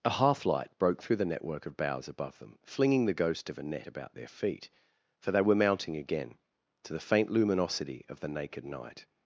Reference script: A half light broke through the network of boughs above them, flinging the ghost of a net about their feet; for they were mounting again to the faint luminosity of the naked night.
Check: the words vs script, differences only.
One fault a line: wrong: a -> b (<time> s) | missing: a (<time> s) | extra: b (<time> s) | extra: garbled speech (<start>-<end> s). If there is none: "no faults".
no faults